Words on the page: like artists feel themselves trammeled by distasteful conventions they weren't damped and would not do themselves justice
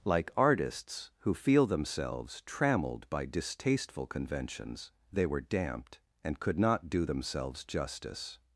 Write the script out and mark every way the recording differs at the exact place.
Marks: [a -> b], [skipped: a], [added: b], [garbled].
like artists [added: who] feel themselves trammeled by distasteful conventions they [weren't -> were] damped and [would -> could] not do themselves justice